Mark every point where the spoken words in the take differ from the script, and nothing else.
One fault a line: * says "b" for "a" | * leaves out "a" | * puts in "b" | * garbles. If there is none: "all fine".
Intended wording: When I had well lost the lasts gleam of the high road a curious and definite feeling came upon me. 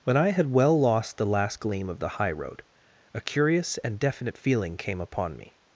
* says "last" for "lasts"